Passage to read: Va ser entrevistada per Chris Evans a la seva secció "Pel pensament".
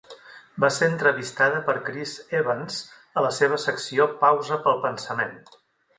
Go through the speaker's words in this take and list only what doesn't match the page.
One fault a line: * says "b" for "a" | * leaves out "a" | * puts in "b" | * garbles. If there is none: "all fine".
* puts in "Pausa"